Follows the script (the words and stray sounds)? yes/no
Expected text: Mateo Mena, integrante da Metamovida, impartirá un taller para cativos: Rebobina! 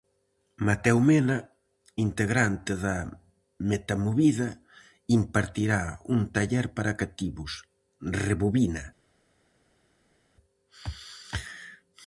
yes